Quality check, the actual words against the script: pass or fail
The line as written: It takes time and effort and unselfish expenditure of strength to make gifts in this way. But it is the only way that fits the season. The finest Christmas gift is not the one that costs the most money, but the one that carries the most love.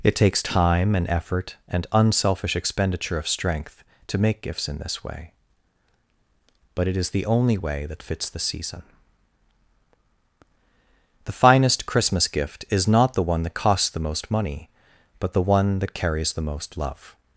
pass